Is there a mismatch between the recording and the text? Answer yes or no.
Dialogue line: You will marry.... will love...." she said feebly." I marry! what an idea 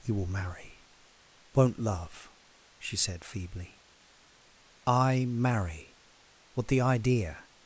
yes